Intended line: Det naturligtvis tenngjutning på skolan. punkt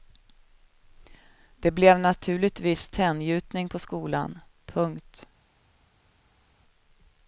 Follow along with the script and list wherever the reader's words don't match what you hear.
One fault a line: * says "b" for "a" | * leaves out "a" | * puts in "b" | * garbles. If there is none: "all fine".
* puts in "blev"